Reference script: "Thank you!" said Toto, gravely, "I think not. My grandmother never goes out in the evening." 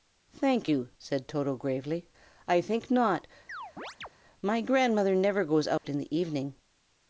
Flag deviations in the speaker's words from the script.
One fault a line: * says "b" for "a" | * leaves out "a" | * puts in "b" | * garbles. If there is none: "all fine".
all fine